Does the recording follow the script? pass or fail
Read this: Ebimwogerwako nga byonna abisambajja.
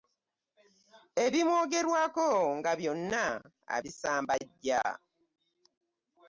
pass